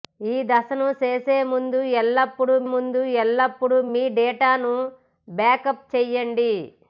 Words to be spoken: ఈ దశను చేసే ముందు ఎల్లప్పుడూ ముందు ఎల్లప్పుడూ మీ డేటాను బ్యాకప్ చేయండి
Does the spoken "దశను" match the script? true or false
true